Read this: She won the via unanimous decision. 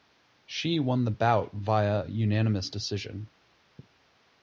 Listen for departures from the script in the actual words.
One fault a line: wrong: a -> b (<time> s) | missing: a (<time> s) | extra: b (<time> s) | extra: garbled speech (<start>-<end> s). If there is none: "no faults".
extra: bout (1.1 s)